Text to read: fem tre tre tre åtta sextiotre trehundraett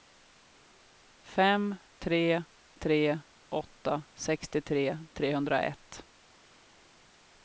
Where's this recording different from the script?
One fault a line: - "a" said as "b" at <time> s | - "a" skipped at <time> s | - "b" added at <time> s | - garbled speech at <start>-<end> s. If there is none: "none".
- "tre" skipped at 3.2 s